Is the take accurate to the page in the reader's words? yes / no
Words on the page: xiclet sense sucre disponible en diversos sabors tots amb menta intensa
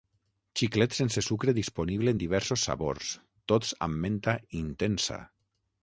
yes